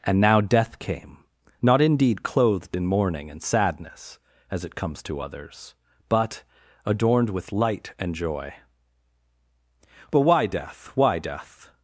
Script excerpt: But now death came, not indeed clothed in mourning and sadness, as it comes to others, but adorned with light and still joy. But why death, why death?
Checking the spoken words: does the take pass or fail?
fail